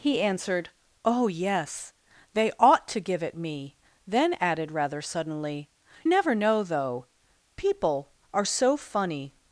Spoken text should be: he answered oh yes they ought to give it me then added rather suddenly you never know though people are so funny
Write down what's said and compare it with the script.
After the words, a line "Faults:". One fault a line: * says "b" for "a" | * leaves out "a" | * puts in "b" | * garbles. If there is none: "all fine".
he answered oh yes they ought to give it me then added rather suddenly never know though people are so funny
Faults:
* leaves out "you"